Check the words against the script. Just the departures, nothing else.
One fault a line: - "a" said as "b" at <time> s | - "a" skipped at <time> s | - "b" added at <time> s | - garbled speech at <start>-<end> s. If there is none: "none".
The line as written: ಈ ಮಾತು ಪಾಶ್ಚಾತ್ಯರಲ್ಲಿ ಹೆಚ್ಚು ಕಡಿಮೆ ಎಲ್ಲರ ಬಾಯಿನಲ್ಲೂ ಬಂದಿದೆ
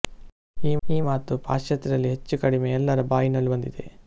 - "ಈ" added at 0.9 s